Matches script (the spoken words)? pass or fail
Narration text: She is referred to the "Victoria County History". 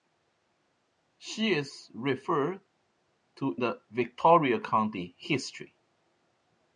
pass